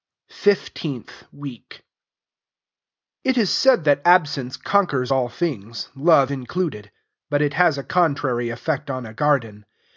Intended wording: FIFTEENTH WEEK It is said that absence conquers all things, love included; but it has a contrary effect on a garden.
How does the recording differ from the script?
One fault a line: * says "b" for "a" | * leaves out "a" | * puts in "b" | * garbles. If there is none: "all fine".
all fine